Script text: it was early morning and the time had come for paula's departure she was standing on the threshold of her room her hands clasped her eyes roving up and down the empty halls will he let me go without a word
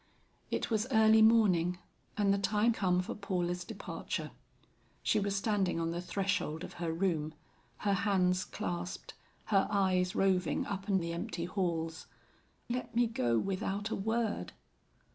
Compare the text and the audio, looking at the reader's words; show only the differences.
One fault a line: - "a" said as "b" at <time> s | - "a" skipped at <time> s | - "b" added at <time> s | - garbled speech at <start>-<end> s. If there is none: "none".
- "had" skipped at 2.7 s
- "down" skipped at 11.0 s
- "will he" skipped at 12.1 s